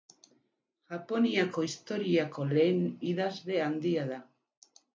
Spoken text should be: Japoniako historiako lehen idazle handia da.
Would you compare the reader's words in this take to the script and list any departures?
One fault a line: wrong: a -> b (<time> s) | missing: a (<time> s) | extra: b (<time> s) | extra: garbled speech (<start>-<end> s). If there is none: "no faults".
no faults